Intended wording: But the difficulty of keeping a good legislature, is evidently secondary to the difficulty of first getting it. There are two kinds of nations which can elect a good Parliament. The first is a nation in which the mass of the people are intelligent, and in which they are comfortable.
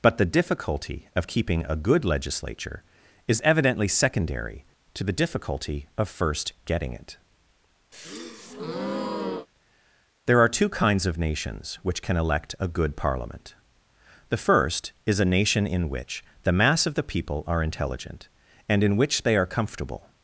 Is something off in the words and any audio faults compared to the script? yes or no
yes